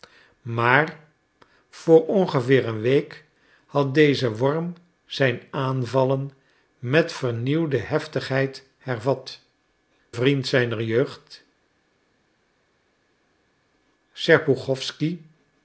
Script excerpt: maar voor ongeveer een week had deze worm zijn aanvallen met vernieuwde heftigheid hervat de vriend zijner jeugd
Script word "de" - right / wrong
wrong